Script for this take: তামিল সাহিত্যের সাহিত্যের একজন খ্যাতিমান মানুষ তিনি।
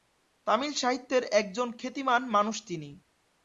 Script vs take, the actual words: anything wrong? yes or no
yes